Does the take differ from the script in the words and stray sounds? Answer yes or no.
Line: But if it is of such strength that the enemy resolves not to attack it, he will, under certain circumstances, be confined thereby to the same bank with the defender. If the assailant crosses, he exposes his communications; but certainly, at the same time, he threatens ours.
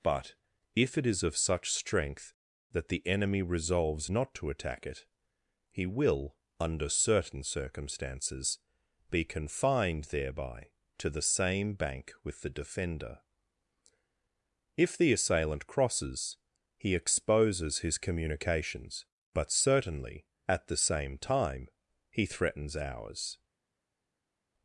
no